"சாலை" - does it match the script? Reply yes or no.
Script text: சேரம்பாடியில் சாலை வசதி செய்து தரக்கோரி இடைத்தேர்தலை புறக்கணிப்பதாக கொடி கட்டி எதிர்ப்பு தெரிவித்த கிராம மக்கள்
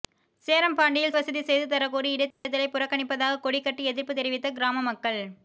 no